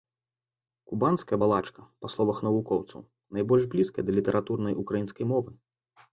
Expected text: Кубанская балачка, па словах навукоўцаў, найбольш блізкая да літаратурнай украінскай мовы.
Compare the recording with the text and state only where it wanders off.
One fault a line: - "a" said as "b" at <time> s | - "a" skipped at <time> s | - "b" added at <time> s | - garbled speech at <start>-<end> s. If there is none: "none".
none